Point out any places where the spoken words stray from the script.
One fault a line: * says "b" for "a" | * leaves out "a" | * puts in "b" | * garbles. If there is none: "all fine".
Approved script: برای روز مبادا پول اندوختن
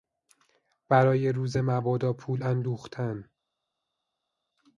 all fine